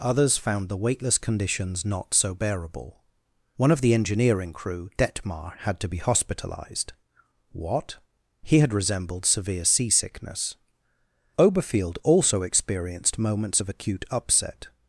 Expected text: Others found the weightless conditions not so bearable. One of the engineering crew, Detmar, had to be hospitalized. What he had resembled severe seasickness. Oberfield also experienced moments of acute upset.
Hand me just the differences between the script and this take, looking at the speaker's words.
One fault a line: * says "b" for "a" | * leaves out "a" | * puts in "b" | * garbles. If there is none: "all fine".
all fine